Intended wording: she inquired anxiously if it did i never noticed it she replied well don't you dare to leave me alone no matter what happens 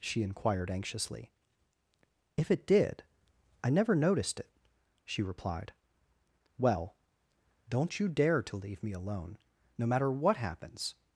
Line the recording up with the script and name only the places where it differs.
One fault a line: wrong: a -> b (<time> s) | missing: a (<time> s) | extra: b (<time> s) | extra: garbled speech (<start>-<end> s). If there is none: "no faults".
no faults